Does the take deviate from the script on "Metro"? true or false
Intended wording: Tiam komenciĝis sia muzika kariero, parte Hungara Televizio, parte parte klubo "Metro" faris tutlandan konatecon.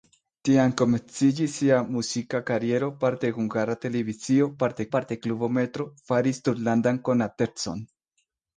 false